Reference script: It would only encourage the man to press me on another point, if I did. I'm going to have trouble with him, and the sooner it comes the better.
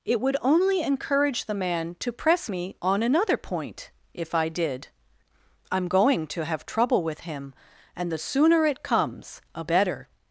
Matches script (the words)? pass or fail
fail